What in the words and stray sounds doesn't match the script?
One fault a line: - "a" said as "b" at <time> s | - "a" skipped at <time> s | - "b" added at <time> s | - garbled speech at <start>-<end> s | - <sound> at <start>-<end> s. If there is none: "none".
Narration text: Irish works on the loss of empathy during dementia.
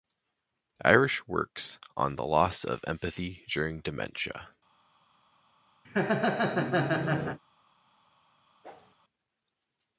- laugh at 5.8-7.4 s
- whoosh at 8.6-8.9 s